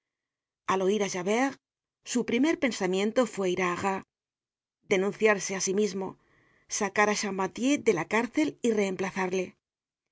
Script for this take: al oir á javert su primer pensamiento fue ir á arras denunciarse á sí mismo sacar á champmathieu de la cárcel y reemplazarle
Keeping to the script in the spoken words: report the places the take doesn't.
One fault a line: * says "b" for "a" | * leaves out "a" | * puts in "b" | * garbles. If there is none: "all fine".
all fine